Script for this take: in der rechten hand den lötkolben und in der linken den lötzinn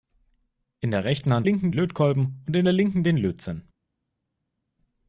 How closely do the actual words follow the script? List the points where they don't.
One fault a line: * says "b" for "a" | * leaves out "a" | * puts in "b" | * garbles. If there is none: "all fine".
* says "linken" for "den"